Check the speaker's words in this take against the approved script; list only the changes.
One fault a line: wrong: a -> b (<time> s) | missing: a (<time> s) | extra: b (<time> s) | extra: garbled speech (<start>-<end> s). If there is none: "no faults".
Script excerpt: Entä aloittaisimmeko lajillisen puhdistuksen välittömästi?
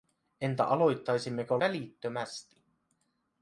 missing: lajillisen puhdistuksen (1.6 s)